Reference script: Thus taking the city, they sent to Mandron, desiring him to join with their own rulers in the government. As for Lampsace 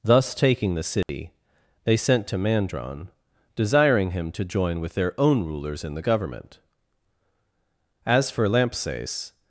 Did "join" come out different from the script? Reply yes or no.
no